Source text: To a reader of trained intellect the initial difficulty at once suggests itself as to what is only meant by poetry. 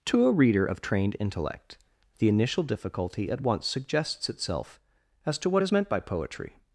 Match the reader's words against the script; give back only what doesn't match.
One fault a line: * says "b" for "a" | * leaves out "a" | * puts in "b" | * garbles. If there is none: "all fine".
* leaves out "only"